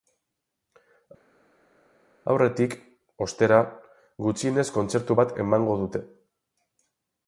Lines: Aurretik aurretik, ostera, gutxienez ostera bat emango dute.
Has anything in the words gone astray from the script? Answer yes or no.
yes